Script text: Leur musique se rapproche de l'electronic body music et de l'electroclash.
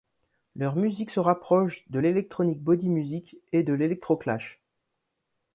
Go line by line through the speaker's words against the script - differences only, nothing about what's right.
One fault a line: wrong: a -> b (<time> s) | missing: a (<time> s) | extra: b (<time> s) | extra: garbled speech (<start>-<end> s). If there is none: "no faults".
no faults